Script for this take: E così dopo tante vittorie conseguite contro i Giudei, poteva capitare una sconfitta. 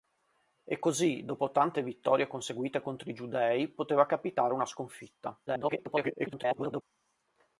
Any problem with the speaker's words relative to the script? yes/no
yes